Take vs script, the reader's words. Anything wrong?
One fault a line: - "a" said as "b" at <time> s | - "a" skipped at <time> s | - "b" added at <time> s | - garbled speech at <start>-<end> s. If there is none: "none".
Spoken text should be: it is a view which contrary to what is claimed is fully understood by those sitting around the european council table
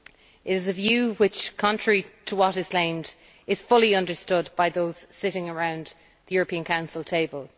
none